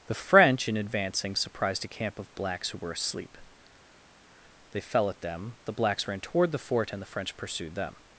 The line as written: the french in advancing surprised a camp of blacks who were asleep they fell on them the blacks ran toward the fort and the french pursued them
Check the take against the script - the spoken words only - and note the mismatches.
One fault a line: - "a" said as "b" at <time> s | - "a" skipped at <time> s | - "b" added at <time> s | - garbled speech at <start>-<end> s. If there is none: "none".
- "on" said as "at" at 5.1 s